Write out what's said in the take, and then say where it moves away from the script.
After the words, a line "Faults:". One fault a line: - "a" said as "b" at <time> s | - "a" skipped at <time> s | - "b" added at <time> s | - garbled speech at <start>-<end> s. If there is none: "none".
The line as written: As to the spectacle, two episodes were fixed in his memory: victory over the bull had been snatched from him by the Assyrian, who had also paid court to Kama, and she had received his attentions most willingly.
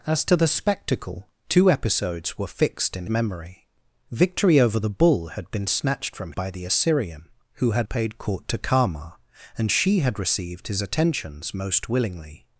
As to the spectacle, two episodes were fixed in memory: victory over the bull had been snatched from by the Assyrian, who had paid court to Kama, and she had received his attentions most willingly.
Faults:
- "his" skipped at 3.0 s
- "him" skipped at 6.3 s
- "also" skipped at 7.9 s